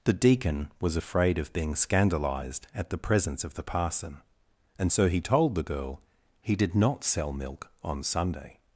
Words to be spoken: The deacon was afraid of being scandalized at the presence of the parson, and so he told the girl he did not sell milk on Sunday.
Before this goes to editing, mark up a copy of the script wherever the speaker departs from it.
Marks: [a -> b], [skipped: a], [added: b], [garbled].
The deacon was afraid of being scandalized at the presence of the parson, and so he told the girl he did not sell milk on Sunday.